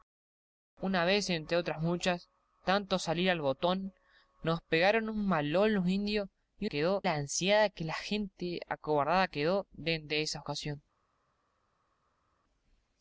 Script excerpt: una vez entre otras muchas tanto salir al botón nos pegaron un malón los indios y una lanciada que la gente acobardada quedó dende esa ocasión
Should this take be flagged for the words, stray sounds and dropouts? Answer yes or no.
yes